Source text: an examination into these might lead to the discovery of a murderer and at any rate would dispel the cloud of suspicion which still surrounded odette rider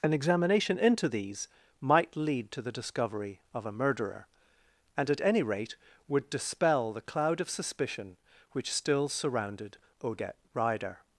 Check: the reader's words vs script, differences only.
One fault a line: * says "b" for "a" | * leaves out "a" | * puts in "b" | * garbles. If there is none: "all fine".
all fine